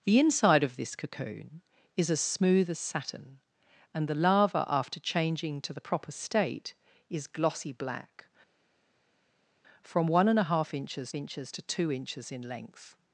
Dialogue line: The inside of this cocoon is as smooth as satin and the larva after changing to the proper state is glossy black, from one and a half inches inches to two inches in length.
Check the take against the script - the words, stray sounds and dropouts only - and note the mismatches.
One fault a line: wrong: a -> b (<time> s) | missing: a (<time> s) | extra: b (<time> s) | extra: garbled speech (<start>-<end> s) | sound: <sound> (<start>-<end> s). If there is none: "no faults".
no faults